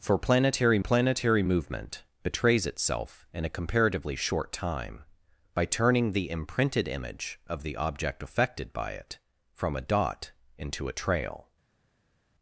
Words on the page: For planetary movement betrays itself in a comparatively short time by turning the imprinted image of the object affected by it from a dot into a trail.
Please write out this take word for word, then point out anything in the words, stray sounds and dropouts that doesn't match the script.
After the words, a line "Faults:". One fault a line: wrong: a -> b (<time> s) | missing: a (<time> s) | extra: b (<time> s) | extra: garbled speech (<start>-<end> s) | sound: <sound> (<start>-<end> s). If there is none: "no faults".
For planetary planetary movement betrays itself in a comparatively short time by turning the imprinted image of the object affected by it from a dot into a trail.
Faults:
extra: planetary (0.8 s)